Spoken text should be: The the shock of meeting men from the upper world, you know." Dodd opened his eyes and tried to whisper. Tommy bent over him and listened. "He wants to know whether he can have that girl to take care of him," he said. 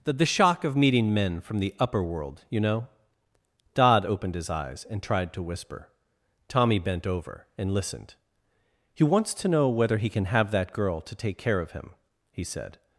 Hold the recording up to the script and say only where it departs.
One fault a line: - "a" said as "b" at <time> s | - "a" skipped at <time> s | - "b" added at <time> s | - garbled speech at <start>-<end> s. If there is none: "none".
- "him" skipped at 7.5 s